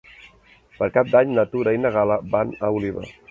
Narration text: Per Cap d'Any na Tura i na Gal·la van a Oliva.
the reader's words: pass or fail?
pass